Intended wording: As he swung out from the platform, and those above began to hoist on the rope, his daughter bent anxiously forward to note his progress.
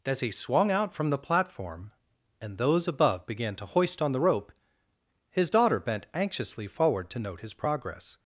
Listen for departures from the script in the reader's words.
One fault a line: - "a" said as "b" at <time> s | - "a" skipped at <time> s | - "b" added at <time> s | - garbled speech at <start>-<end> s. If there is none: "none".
none